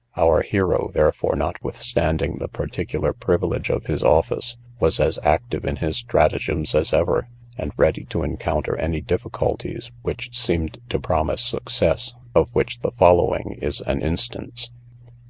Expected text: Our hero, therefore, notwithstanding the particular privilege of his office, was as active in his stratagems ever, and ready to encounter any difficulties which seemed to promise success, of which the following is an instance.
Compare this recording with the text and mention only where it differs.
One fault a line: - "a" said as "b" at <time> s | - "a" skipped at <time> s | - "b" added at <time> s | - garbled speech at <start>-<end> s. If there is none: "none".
- "as" added at 6.7 s